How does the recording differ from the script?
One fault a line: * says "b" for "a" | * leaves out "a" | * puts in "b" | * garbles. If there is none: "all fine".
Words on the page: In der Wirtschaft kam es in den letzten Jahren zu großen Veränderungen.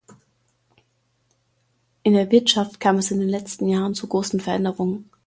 all fine